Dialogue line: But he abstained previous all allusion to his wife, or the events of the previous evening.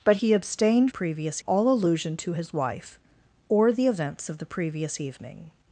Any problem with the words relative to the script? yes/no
no